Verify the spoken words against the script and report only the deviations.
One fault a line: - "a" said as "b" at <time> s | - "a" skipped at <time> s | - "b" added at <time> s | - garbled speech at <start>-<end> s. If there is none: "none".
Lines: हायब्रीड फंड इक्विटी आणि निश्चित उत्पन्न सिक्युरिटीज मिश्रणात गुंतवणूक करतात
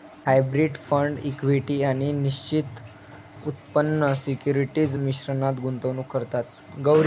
none